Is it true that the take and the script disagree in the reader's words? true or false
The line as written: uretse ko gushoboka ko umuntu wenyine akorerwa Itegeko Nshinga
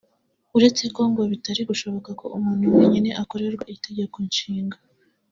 true